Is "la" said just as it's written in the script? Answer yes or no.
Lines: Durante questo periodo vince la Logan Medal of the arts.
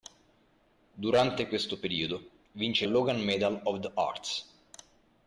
no